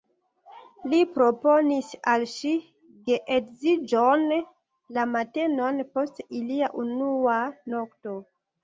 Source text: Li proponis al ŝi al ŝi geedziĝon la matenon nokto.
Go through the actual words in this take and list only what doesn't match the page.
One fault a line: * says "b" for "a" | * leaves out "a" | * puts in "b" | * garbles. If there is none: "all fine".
* leaves out "al ŝi"
* puts in "post ilia unua"